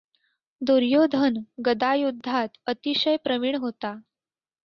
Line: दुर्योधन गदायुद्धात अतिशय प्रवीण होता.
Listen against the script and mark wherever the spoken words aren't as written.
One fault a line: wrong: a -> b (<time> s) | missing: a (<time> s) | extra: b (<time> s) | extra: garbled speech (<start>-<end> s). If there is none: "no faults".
no faults